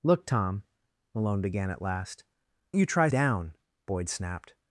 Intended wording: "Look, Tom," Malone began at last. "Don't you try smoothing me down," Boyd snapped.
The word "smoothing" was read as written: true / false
false